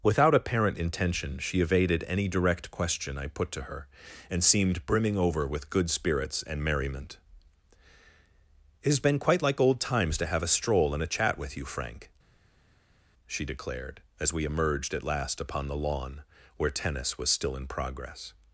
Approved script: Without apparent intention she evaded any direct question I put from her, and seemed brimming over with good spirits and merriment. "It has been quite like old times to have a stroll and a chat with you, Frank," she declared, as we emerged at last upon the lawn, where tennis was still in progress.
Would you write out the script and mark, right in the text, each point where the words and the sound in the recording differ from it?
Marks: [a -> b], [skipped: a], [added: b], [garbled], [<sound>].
Without apparent intention she evaded any direct question I put [from -> to] her, and seemed brimming over with good spirits and merriment. "It has been quite like old times to have a stroll and a chat with you, Frank," she declared, as we emerged at last upon the lawn, where tennis was still in progress.